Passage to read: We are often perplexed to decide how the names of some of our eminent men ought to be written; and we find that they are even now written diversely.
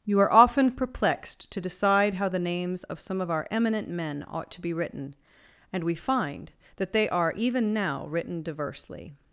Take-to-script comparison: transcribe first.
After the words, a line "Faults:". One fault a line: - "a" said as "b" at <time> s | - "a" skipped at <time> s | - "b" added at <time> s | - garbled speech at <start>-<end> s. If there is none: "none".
You are often perplexed to decide how the names of some of our eminent men ought to be written; and we find that they are even now written diversely.
Faults:
- "We" said as "You" at 0.0 s